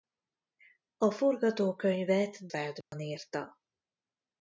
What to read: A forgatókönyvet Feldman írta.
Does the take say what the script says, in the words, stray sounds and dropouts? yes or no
no